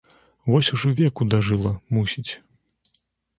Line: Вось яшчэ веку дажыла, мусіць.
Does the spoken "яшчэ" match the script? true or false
false